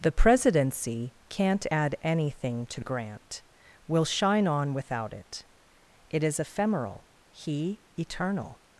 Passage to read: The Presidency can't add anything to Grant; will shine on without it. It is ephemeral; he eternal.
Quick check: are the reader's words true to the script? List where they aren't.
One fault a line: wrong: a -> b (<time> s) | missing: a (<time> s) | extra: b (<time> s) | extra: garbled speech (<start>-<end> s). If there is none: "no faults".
no faults